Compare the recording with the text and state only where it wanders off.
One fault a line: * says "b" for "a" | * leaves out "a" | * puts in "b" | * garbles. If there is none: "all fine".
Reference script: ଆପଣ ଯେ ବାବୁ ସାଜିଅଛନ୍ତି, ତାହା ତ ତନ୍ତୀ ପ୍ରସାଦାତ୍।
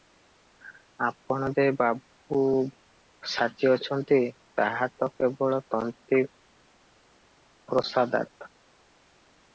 * puts in "କେବଳ"